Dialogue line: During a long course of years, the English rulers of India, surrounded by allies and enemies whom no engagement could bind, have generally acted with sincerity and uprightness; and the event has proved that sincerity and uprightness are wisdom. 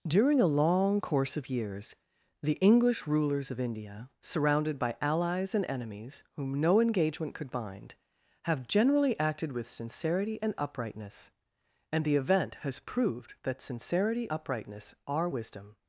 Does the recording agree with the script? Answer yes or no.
no